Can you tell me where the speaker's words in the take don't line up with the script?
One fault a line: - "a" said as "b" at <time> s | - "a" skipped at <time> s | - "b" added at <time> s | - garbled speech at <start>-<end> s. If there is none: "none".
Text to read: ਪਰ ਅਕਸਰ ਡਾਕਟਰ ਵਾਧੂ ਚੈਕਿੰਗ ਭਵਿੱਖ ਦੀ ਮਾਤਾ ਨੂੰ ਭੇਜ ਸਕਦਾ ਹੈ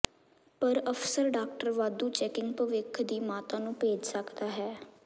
none